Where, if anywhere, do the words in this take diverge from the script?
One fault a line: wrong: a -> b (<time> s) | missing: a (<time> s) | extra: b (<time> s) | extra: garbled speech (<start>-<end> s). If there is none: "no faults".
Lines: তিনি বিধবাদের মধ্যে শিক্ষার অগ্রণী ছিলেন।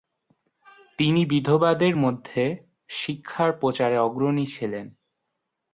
extra: প্রচারে (3.5 s)